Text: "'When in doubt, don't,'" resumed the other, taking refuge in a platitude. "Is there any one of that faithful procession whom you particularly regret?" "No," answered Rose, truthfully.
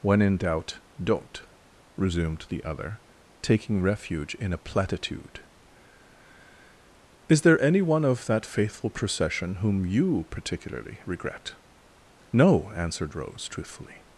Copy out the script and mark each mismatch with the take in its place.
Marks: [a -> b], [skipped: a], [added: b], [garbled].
"'When in doubt, don't,'" resumed the other, taking refuge in a platitude. "Is there any one of that faithful procession whom you particularly regret?" "No," answered Rose, truthfully.